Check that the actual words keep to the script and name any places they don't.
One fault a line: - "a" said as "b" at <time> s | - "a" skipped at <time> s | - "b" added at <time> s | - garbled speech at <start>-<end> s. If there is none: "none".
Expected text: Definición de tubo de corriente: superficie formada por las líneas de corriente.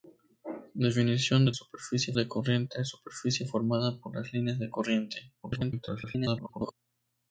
- "tubo" said as "superficie" at 1.5 s
- garbled speech at 5.4-6.7 s